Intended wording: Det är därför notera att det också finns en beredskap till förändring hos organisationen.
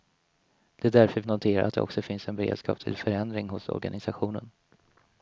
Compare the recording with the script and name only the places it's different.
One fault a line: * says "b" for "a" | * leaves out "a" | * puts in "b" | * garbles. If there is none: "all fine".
all fine